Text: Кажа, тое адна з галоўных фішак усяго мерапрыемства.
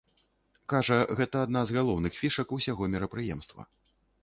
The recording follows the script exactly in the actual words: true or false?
false